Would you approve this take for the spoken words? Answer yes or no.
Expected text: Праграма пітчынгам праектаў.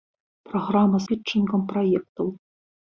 yes